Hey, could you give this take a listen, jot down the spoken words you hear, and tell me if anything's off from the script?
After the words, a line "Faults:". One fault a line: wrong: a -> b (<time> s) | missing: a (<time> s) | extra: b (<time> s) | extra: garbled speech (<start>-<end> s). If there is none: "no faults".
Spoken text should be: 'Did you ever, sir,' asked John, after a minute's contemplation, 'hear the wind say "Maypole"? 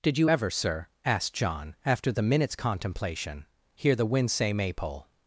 'Did you ever, sir,' asked John, after the minute's contemplation, 'hear the wind say "Maypole"?
Faults:
wrong: a -> the (2.1 s)